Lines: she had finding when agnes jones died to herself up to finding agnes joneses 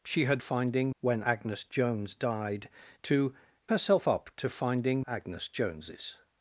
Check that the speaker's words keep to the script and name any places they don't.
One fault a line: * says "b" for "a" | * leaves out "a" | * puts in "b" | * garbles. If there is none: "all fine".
all fine